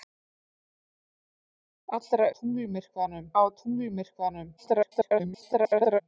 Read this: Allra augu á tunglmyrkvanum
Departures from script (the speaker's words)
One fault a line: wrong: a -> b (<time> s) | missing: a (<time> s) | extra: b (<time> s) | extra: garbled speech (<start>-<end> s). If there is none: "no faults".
wrong: augu -> tunglmyrkvanum (2.3 s)
extra: garbled speech (4.6-6.0 s)